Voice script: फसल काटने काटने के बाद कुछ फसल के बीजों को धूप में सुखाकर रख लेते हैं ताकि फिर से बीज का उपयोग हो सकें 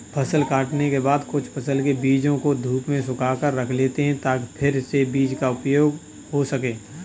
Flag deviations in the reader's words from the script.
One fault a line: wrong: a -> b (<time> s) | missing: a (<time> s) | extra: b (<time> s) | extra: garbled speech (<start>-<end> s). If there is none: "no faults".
missing: काटने (0.9 s)